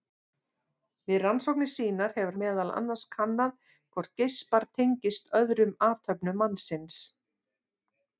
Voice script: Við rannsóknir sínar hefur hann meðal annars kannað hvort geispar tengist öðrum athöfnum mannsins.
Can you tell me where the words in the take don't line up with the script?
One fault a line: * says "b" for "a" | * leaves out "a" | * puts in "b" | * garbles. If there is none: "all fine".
* leaves out "hann"